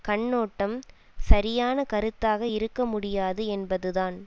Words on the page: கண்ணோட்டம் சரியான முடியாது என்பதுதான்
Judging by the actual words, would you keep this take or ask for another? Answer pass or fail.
fail